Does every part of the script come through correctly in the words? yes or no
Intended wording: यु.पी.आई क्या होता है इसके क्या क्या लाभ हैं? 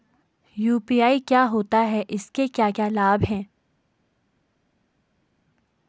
yes